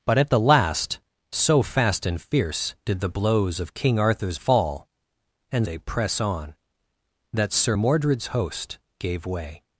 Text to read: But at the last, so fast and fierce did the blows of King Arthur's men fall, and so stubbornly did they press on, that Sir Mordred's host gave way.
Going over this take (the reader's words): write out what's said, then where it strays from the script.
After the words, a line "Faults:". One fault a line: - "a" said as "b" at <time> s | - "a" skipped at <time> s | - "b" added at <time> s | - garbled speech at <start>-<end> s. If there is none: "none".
But at the last, so fast and fierce did the blows of King Arthur's fall, and they press on, that Sir Mordred's host gave way.
Faults:
- "men" skipped at 4.4 s
- "so stubbornly did" skipped at 5.7 s